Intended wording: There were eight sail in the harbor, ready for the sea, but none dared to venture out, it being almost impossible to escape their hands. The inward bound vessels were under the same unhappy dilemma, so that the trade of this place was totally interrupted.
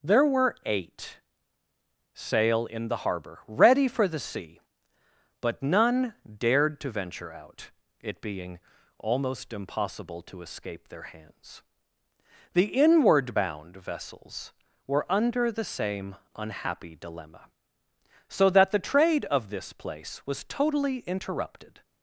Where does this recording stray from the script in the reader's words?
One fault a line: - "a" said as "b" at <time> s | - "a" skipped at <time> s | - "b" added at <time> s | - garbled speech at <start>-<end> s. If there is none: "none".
none